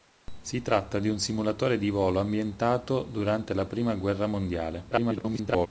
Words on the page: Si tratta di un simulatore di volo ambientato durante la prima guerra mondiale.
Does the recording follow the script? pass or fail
fail